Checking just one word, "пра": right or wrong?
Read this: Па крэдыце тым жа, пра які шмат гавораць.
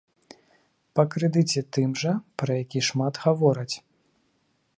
right